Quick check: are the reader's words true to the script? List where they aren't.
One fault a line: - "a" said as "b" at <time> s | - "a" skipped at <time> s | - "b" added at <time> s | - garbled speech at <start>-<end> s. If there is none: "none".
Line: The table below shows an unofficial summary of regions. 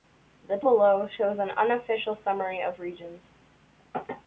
- "table" skipped at 0.6 s